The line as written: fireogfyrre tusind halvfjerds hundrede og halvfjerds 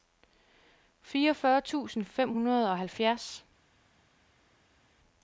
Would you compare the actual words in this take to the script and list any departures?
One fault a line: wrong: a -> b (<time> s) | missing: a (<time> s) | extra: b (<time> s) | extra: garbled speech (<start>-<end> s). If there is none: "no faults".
wrong: halvfjerds -> fem (2.0 s)